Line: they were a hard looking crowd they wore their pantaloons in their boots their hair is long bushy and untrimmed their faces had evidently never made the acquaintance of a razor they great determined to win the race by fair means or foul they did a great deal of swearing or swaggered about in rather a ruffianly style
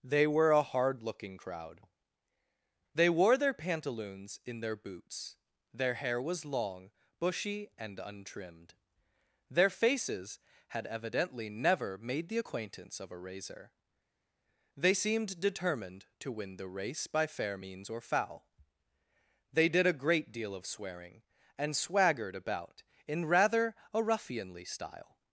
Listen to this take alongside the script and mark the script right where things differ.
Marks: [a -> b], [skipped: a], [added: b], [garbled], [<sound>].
they were a hard looking crowd they wore their pantaloons in their boots their hair [is -> was] long bushy and untrimmed their faces had evidently never made the acquaintance of a razor they [great -> seemed] determined to win the race by fair means or foul they did a great deal of swearing [or -> and] swaggered about in rather a ruffianly style